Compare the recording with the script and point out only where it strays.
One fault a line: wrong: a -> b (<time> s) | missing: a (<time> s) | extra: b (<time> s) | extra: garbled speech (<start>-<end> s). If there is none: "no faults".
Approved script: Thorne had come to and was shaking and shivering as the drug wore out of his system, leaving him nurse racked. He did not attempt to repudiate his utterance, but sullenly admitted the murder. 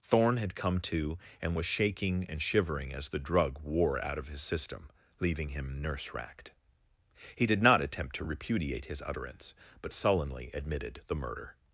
no faults